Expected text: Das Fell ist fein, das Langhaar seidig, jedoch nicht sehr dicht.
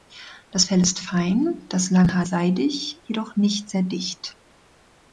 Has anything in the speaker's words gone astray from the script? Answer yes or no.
no